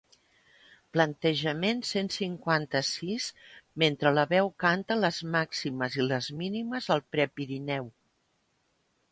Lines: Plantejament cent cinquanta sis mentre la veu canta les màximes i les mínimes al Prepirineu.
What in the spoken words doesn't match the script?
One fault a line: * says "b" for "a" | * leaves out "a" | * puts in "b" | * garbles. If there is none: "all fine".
all fine